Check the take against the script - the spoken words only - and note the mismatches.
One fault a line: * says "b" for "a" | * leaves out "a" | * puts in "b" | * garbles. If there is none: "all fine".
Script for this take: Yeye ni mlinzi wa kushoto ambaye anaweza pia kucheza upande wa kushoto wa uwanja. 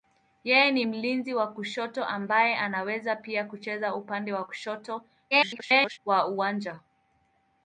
* garbles